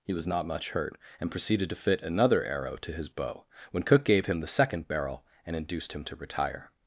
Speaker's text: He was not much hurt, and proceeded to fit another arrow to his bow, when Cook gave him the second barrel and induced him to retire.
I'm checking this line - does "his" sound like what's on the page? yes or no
yes